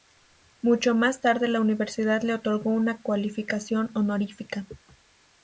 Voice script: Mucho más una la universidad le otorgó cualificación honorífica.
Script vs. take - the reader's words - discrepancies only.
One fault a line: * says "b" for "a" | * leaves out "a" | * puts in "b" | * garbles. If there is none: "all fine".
* says "tarde" for "una"
* puts in "una"